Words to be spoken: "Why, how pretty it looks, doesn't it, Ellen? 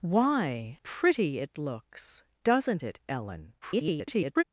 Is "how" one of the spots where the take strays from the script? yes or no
yes